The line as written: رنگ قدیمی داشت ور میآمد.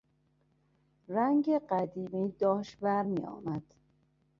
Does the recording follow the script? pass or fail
pass